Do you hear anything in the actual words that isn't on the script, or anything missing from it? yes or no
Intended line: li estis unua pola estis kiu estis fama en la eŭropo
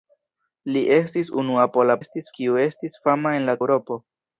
no